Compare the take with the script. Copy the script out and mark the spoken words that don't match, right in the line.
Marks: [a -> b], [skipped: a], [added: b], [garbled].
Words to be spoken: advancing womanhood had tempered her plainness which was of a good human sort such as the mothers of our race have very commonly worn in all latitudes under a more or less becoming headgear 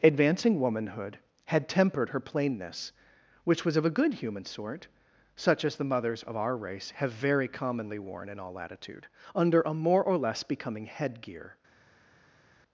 advancing womanhood had tempered her plainness which was of a good human sort such as the mothers of our race have very commonly worn in all [latitudes -> latitude] under a more or less becoming headgear